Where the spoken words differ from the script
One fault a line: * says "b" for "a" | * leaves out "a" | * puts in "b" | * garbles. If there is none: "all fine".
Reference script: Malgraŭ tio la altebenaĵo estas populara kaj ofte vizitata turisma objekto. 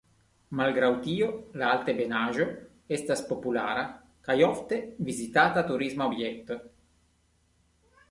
all fine